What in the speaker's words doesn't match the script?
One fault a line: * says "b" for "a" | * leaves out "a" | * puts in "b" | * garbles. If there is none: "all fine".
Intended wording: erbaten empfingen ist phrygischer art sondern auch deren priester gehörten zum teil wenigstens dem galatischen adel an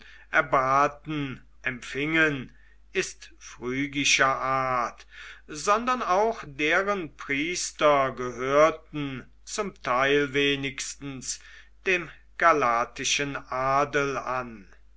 all fine